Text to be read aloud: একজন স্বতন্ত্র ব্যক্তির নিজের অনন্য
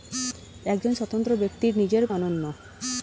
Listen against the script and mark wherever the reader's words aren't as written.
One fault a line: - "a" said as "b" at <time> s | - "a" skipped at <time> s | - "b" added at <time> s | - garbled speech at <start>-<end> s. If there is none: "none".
none